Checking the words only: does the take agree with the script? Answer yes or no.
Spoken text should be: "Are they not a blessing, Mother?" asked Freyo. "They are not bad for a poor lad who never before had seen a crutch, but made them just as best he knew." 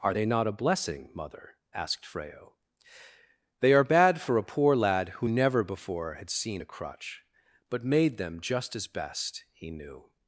no